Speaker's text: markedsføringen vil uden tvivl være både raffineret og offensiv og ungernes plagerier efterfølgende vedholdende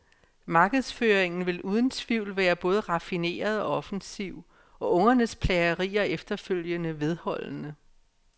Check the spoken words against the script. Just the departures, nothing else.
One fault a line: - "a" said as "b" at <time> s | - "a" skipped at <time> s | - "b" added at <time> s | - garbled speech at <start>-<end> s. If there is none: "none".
none